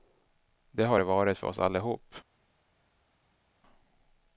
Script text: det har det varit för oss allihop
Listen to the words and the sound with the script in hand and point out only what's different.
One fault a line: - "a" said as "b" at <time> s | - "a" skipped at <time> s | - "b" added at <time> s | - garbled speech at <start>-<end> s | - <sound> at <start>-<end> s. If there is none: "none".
none